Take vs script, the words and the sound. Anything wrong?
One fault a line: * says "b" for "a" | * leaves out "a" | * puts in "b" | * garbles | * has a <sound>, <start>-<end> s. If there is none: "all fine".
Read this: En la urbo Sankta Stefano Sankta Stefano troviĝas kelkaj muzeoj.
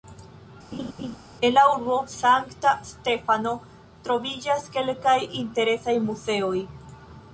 * has a laugh, 0.7-1.2 s
* leaves out "Sankta Stefano"
* puts in "interesaj"